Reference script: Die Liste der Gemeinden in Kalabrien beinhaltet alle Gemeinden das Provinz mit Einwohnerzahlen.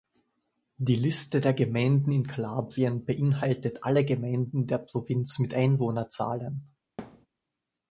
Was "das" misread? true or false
true